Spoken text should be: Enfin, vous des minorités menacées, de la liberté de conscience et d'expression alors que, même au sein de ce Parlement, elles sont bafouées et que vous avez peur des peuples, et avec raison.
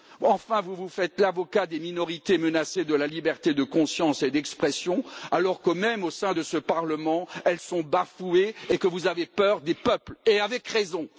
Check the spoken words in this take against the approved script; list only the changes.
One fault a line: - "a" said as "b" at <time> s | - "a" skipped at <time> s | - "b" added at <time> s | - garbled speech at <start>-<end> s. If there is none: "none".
- "vous faites l'avocat" added at 0.8 s